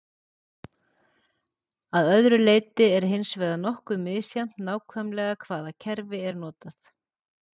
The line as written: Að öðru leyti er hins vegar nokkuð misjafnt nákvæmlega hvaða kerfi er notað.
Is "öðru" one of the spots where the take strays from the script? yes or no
no